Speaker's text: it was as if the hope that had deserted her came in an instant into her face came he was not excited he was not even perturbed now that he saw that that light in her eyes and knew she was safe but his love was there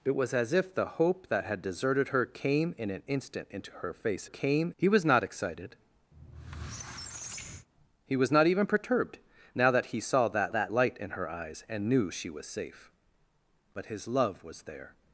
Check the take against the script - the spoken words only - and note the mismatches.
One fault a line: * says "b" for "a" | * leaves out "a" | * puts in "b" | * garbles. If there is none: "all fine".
all fine